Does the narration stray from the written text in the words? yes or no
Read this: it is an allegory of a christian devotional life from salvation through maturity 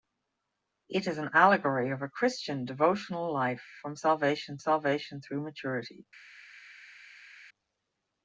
yes